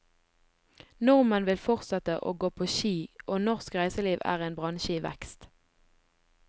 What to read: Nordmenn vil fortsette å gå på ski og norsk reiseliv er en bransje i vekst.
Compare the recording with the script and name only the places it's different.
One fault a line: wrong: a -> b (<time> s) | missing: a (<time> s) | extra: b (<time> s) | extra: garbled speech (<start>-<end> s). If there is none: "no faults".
no faults